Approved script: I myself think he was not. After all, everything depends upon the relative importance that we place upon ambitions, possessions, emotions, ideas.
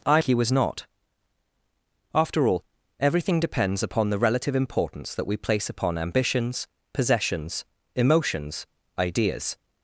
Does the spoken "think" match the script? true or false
false